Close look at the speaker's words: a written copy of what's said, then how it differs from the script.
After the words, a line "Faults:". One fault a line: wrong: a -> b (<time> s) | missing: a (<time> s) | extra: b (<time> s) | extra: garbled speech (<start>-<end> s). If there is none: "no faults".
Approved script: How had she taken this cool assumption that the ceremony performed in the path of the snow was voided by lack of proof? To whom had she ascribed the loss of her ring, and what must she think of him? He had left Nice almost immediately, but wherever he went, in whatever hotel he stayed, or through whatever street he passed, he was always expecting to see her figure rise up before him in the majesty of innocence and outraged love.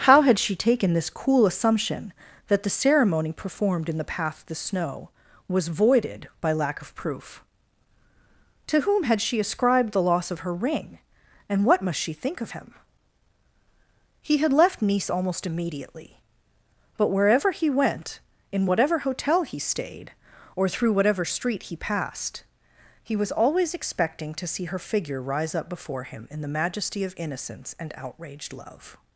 How had she taken this cool assumption that the ceremony performed in the path of the snow was voided by lack of proof? To whom had she ascribed the loss of her ring, and what must she think of him? He had left Nice almost immediately, but wherever he went, in whatever hotel he stayed, or through whatever street he passed, he was always expecting to see her figure rise up before him in the majesty of innocence and outraged love.
Faults:
no faults